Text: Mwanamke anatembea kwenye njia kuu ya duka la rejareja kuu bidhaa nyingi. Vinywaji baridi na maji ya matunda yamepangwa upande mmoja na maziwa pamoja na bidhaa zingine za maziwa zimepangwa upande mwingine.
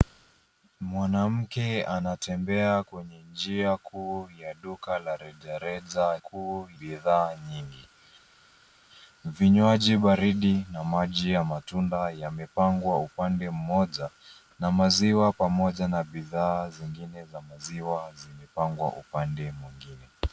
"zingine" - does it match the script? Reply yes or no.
yes